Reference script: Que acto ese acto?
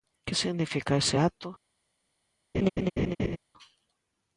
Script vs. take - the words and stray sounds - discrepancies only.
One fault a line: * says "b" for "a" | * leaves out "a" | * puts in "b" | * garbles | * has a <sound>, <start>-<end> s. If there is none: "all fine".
* says "significa" for "acto"
* has a laugh, 2.5-3.4 s